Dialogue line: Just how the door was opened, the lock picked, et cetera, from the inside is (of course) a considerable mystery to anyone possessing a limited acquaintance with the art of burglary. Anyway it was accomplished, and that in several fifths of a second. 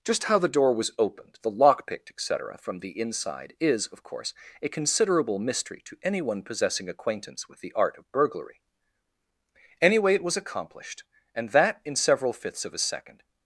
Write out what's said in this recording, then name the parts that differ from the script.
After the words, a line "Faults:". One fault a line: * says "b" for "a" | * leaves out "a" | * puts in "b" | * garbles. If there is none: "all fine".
Just how the door was opened, the lock picked, et cetera, from the inside is (of course) a considerable mystery to anyone possessing acquaintance with the art of burglary. Anyway it was accomplished, and that in several fifths of a second.
Faults:
* leaves out "a limited"